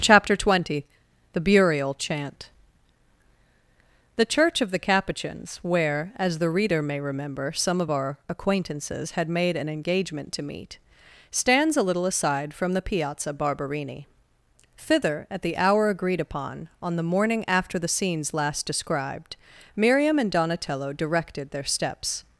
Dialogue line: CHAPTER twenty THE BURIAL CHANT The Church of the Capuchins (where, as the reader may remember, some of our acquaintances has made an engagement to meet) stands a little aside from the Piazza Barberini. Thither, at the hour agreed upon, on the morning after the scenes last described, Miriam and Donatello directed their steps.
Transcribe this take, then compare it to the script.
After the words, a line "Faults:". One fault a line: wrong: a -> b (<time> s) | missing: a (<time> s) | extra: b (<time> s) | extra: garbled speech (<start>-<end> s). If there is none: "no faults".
CHAPTER twenty THE BURIAL CHANT The Church of the Capuchins (where, as the reader may remember, some of our acquaintances had made an engagement to meet) stands a little aside from the Piazza Barberini. Thither, at the hour agreed upon, on the morning after the scenes last described, Miriam and Donatello directed their steps.
Faults:
wrong: has -> had (9.1 s)